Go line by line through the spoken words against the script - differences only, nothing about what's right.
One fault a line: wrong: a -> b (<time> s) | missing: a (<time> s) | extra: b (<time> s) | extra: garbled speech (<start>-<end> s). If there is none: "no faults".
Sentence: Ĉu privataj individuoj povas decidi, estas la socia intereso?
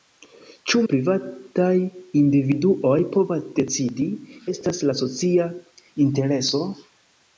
no faults